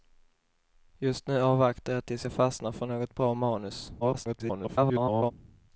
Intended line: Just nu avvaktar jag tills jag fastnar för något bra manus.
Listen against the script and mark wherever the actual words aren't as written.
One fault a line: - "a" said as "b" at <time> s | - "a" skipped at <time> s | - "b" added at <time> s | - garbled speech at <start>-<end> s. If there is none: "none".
- garbled speech at 4.0-5.3 s